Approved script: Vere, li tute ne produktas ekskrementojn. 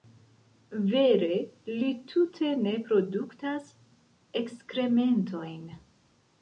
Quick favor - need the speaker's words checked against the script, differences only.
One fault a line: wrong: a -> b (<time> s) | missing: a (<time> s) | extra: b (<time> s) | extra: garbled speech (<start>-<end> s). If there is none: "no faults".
no faults